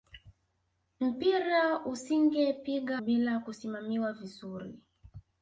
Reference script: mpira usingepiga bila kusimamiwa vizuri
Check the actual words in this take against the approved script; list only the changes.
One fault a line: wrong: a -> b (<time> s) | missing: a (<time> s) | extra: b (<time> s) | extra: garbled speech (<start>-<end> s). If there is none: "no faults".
no faults